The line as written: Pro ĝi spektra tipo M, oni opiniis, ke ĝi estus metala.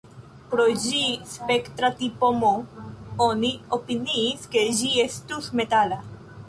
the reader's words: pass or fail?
pass